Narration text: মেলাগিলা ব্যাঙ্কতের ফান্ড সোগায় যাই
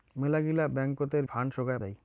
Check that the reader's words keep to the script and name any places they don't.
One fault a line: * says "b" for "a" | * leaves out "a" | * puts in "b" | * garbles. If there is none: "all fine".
all fine